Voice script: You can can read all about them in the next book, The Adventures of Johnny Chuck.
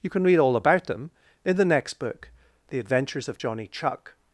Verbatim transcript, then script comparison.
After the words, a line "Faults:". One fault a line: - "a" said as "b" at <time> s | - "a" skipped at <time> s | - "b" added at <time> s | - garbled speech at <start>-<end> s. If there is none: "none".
You can read all about them in the next book, The Adventures of Johnny Chuck.
Faults:
- "can" skipped at 0.2 s